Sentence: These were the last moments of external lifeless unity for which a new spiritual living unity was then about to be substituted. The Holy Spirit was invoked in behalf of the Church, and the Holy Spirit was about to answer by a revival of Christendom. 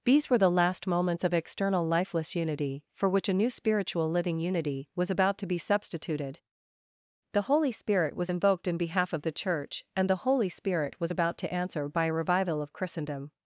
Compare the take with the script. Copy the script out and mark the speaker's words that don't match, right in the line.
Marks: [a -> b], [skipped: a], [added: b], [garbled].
These were the last moments of external lifeless unity for which a new spiritual living unity was [skipped: then] about to be substituted. The Holy Spirit was invoked in behalf of the Church, and the Holy Spirit was about to answer by a revival of Christendom.